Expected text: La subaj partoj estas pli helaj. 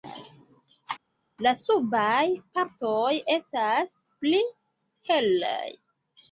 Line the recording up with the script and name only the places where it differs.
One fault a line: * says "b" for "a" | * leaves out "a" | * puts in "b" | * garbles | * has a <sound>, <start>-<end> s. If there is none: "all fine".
all fine